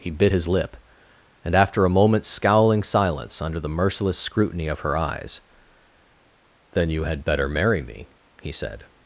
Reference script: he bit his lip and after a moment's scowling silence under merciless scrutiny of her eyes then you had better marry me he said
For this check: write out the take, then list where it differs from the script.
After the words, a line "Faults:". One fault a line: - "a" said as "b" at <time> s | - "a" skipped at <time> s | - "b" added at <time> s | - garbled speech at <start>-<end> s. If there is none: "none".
he bit his lip and after a moment's scowling silence under the merciless scrutiny of her eyes then you had better marry me he said
Faults:
- "the" added at 3.6 s